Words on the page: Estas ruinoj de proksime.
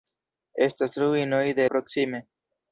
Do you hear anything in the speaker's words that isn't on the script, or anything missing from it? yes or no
no